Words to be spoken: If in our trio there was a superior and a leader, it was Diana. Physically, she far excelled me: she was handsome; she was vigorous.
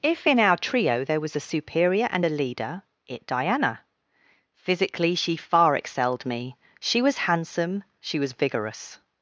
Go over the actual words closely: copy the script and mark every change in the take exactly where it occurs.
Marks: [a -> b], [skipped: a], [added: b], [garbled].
If in our trio there was a superior and a leader, it [skipped: was] Diana. Physically, she far excelled me: she was handsome; she was vigorous.